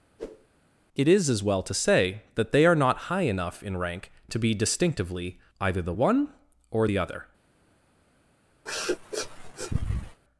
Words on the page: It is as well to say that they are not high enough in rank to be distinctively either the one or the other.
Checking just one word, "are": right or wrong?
right